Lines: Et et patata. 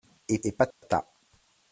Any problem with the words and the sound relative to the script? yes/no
yes